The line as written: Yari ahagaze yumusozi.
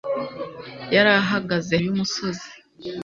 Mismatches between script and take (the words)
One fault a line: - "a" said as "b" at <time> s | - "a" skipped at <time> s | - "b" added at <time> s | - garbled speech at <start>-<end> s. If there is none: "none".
none